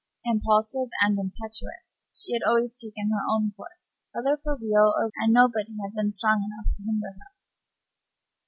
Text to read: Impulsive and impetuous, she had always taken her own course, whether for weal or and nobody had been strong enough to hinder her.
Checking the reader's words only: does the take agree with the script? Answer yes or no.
yes